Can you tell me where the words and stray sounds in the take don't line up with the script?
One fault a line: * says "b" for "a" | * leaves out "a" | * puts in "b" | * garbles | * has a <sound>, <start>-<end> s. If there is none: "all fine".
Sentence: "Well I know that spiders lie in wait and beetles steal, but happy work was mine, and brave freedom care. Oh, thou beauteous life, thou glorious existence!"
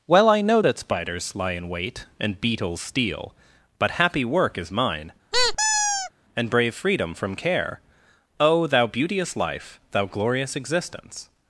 * says "is" for "was"
* has a squeak, 5.3-6.1 s
* puts in "from"